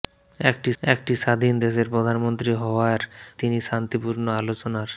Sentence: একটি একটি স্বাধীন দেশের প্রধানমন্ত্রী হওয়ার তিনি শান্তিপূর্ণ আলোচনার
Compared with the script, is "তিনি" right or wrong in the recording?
right